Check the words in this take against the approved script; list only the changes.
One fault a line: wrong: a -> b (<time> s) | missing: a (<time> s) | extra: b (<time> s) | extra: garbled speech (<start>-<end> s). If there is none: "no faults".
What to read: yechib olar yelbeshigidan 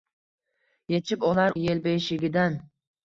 no faults